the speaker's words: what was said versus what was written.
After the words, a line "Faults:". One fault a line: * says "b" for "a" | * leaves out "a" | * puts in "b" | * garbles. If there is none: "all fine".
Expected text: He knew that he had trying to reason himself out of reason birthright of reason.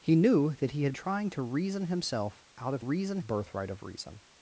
He knew that he had trying to reason himself out of reason birthright of reason.
Faults:
all fine